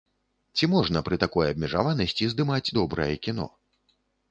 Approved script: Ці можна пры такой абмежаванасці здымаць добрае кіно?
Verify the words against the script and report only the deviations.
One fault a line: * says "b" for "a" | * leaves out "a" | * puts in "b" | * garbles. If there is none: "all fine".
all fine